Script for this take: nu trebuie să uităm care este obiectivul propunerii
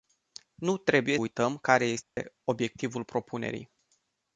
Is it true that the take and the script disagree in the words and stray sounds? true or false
true